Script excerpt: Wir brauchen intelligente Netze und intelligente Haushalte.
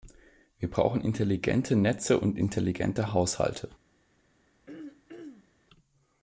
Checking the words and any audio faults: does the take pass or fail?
fail